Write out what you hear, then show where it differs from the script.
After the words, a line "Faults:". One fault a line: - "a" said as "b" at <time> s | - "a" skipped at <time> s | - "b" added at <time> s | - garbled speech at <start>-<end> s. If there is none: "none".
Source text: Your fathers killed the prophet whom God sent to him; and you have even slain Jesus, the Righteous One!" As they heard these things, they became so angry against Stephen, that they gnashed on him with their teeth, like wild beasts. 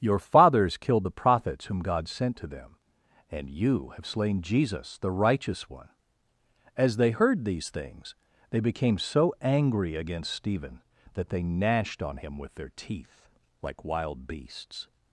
Your fathers killed the prophets whom God sent to them; and you have slain Jesus, the Righteous One!" As they heard these things, they became so angry against Stephen, that they gnashed on him with their teeth, like wild beasts.
Faults:
- "prophet" said as "prophets" at 1.1 s
- "him" said as "them" at 2.5 s
- "even" skipped at 4.0 s